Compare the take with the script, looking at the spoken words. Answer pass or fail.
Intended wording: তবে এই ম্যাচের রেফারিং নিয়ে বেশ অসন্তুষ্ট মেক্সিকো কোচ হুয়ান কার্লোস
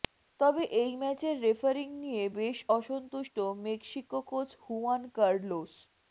pass